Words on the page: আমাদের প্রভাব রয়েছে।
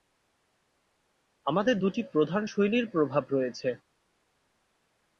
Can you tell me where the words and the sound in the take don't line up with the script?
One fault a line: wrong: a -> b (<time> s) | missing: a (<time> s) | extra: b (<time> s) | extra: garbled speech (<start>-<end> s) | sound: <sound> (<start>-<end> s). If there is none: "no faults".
extra: দুটি প্রধান শৈলীর (1.8 s)